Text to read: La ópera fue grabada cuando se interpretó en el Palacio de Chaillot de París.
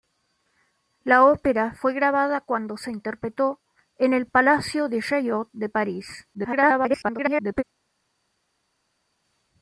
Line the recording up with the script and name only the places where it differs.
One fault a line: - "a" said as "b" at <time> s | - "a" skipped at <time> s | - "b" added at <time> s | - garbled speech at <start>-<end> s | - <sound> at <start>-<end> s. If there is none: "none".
- garbled speech at 6.3-7.6 s